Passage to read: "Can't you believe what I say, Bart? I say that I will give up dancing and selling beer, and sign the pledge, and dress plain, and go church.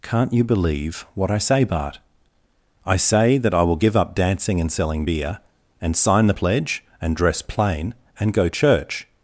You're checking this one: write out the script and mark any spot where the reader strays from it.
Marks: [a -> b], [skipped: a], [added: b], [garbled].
"Can't you believe what I say, Bart? I say that I will give up dancing and selling beer, and sign the pledge, and dress plain, and go church.